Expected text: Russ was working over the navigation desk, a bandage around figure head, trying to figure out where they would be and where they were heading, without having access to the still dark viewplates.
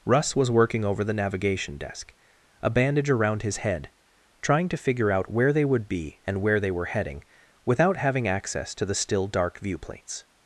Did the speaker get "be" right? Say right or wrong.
right